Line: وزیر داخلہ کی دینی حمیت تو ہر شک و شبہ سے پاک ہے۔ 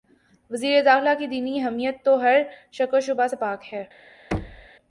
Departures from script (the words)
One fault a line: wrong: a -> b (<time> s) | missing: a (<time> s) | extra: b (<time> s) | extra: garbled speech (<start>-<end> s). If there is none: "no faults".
no faults